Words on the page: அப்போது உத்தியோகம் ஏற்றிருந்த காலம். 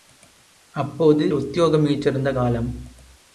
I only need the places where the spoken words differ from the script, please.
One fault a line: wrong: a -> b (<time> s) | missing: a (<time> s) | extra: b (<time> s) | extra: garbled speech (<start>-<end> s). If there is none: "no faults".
no faults